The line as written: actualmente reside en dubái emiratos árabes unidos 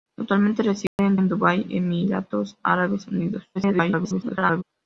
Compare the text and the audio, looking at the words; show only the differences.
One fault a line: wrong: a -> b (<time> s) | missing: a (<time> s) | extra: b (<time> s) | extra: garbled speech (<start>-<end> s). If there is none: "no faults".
extra: en (1.2 s)
extra: garbled speech (3.5-4.6 s)